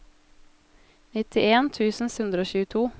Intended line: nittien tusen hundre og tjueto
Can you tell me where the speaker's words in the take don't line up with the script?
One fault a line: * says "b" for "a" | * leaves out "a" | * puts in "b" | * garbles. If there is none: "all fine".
all fine